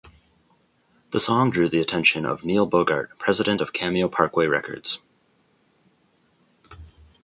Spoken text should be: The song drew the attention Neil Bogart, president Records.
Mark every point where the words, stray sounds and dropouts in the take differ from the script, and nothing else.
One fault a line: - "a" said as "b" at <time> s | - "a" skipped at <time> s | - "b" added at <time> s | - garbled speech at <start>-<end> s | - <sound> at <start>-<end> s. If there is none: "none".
- "of" added at 2.2 s
- "of Cameo Parkway" added at 3.6 s